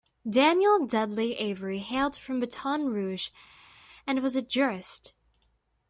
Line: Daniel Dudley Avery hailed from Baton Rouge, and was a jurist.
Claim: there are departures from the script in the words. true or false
false